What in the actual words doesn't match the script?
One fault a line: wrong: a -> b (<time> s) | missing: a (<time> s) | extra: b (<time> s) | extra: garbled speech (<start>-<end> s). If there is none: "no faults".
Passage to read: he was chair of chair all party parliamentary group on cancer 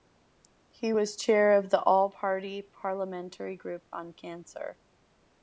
wrong: chair -> the (1.7 s)